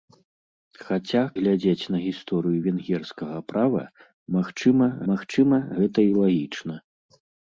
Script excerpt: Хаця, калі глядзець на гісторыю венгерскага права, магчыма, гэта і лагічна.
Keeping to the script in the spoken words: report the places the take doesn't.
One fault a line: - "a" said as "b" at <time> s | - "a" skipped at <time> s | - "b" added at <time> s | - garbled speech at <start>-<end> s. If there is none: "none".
- "калі" skipped at 1.2 s
- "магчыма" added at 5.1 s